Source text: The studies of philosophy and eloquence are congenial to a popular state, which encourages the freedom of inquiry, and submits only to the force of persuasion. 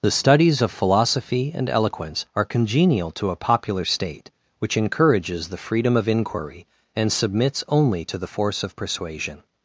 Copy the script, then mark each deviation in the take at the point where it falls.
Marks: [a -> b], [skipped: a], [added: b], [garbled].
The studies of philosophy and eloquence are congenial to a popular state, which encourages the freedom of inquiry, and submits only to the force of persuasion.